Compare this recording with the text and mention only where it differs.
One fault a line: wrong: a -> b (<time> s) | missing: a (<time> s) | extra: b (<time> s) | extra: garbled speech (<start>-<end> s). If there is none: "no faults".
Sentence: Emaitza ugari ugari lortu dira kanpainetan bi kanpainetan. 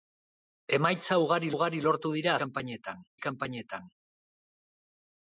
no faults